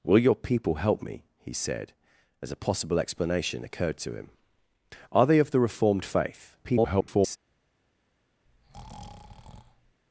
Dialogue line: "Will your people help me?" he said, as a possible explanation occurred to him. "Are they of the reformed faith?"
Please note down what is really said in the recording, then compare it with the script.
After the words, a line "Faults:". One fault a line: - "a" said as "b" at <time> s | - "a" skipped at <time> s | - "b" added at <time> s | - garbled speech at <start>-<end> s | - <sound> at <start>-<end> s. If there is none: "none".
"Will your people help me?" he said, as a possible explanation occurred to him. "Are they of the reformed faith?" [garbled]
Faults:
- garbled speech at 6.6-7.4 s
- breath at 8.5-10.0 s